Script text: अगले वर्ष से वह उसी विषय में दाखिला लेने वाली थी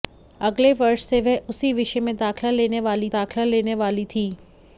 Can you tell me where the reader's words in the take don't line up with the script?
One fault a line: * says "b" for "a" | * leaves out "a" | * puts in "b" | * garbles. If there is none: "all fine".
* puts in "दाखिला लेने वाली"